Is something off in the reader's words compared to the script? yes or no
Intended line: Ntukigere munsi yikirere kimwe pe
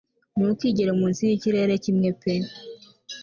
no